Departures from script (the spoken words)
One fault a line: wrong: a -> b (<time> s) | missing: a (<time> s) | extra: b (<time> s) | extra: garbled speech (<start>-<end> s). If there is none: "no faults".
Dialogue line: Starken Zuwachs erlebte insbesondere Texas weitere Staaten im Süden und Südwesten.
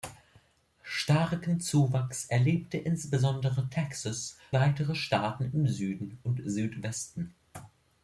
no faults